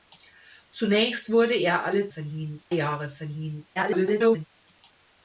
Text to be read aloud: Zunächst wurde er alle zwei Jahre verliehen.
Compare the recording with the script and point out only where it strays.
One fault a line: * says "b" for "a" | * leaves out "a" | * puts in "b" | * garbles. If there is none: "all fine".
* says "verliehen" for "zwei"
* garbles